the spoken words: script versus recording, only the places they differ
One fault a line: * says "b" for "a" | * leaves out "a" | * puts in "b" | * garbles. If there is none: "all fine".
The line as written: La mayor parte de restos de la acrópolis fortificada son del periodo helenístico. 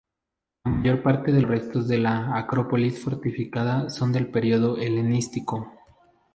all fine